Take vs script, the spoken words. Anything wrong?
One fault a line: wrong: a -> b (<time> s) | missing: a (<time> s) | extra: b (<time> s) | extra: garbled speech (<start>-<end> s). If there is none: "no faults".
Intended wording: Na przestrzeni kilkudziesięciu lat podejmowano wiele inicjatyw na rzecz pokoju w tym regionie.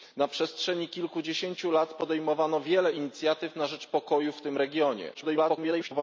extra: garbled speech (5.1-6.0 s)